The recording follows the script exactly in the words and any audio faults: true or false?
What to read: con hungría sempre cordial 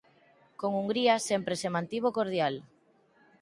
false